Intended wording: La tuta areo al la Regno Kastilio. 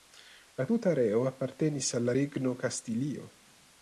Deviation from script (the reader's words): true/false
true